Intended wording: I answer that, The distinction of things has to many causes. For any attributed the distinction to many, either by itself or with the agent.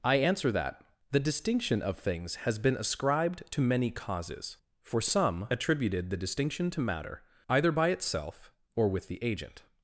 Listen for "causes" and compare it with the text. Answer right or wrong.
right